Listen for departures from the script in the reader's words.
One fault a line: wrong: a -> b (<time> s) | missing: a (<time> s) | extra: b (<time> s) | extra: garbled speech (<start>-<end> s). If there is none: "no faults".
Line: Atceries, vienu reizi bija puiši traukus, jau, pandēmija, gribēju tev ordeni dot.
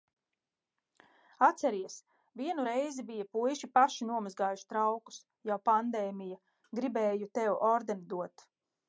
extra: paši nomazgājuši (3.8 s)